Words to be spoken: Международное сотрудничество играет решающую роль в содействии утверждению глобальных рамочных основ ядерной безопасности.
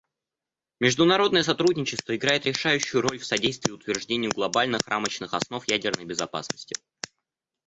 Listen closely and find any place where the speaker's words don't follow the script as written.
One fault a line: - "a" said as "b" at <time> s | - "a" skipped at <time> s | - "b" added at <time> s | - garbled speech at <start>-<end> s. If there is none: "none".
none